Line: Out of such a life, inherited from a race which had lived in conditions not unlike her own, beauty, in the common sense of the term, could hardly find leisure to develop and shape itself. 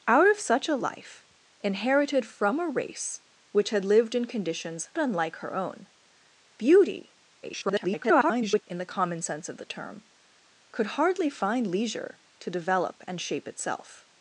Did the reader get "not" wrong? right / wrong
wrong